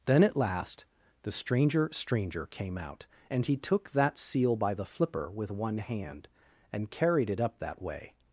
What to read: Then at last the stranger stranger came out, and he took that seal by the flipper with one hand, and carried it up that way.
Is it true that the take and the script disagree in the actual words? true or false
false